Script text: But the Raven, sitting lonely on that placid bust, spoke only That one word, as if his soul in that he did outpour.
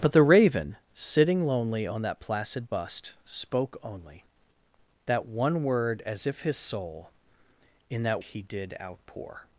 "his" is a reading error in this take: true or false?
false